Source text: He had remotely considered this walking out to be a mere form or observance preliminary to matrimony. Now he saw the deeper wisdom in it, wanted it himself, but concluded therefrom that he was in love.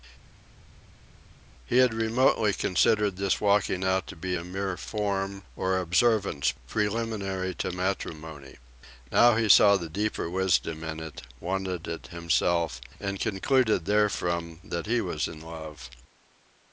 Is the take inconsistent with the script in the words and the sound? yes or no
yes